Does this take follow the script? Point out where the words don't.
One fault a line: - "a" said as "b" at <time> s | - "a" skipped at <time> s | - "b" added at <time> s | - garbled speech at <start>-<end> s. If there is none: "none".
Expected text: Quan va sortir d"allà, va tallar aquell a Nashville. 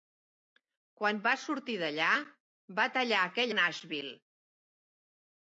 none